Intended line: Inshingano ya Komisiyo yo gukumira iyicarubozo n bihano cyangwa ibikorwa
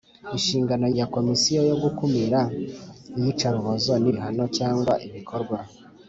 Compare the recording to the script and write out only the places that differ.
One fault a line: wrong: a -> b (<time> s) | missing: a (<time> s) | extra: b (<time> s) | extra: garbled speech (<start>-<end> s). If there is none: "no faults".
no faults